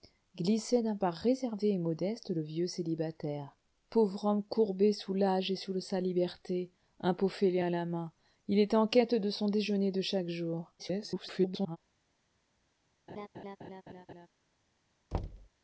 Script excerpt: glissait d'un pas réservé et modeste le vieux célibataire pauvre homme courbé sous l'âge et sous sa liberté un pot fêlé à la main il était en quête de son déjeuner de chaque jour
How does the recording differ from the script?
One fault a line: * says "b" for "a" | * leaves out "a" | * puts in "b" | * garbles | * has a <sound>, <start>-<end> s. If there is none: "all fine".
* garbles
* has a laugh, 13.1-14.3 s
* has a thud, 15.1-15.5 s